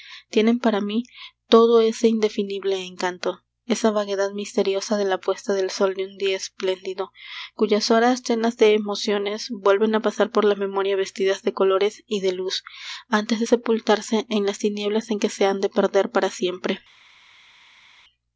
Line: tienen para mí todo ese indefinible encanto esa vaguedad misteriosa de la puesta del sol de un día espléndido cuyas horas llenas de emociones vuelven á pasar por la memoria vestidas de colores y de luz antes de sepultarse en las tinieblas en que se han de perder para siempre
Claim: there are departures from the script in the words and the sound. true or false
false